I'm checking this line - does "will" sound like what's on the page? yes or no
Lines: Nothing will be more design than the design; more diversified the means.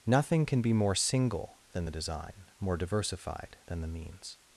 no